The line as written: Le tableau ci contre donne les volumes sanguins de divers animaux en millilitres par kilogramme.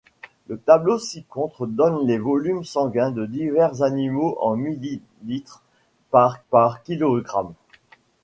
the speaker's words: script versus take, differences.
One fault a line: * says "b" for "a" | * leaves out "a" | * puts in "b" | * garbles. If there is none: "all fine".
* puts in "par"